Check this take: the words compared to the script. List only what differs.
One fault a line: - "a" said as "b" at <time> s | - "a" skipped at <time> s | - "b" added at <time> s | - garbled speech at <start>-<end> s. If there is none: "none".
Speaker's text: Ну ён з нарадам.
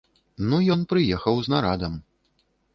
- "прыехаў" added at 0.9 s